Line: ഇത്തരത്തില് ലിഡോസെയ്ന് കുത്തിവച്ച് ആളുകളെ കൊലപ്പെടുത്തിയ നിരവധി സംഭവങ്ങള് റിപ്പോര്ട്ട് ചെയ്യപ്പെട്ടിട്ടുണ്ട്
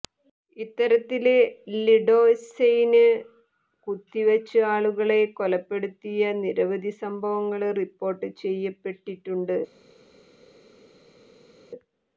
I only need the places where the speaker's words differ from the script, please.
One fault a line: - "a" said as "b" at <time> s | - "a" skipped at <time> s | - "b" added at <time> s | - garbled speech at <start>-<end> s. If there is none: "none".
none